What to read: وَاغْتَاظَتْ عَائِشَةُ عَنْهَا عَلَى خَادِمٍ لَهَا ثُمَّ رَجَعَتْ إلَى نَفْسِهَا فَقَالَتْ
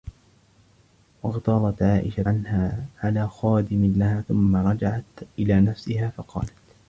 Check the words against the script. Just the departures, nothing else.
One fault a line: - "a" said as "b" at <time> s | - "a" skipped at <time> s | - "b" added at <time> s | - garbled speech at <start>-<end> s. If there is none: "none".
none